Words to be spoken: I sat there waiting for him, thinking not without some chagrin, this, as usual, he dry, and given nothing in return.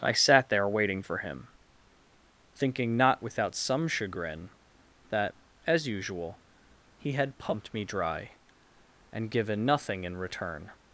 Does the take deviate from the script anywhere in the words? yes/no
yes